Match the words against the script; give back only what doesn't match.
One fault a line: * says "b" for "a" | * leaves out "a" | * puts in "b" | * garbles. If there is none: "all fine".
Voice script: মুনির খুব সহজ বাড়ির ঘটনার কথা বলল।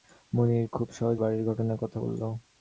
all fine